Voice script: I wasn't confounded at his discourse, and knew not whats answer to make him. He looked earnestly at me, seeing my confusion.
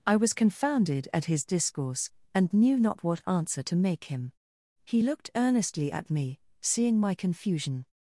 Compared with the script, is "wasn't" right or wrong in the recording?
wrong